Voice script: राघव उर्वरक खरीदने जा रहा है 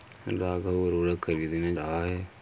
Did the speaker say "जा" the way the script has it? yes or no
no